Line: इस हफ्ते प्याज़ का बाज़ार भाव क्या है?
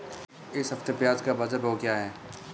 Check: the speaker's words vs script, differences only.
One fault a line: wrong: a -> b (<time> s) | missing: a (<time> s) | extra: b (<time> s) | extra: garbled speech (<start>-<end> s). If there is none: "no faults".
no faults